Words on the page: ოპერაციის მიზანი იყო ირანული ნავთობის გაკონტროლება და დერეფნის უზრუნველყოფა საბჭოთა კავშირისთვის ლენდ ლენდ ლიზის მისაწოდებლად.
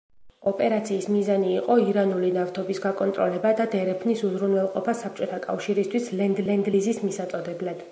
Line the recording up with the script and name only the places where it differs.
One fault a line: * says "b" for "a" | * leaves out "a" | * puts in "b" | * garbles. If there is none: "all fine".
all fine